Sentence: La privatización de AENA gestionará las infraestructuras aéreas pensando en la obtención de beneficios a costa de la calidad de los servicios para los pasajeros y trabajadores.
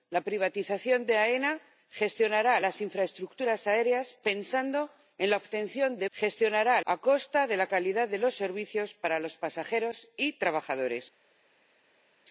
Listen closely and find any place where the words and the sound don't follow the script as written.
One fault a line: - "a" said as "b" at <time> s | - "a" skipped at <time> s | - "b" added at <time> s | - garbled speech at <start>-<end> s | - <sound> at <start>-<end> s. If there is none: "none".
- "beneficios" said as "gestionará" at 6.1 s